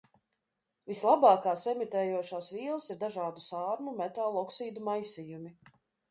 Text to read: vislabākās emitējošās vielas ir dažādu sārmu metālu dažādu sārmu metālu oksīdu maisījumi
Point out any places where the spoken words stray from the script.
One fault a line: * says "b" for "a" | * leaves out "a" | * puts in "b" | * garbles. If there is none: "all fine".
* leaves out "dažādu sārmu metālu"